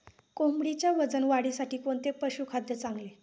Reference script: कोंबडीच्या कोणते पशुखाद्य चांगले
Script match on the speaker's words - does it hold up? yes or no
no